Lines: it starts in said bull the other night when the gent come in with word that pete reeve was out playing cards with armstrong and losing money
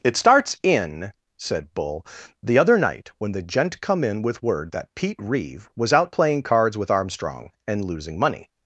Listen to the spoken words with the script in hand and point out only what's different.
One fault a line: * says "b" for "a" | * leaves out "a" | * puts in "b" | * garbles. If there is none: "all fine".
all fine